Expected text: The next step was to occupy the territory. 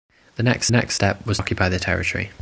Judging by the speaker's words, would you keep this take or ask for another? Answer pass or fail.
fail